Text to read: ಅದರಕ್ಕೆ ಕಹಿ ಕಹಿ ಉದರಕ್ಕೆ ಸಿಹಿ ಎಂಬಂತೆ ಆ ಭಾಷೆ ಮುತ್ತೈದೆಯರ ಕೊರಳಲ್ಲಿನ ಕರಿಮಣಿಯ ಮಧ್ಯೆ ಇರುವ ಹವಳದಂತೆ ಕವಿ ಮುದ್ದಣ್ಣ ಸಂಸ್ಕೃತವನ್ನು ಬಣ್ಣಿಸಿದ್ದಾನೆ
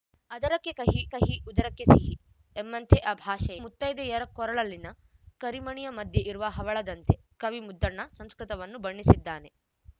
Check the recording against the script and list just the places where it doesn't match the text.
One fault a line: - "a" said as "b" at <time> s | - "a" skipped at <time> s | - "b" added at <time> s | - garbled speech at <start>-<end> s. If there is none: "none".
none